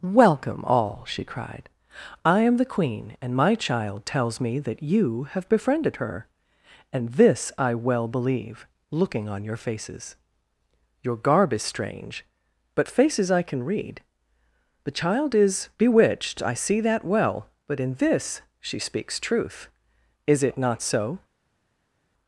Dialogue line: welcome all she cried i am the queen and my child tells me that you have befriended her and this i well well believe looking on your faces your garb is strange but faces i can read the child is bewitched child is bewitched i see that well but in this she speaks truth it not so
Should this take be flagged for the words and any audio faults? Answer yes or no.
yes